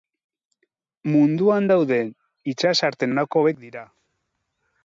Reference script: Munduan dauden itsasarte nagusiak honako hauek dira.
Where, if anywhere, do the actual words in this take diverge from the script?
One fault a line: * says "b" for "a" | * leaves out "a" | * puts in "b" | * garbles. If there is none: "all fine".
* leaves out "nagusiak"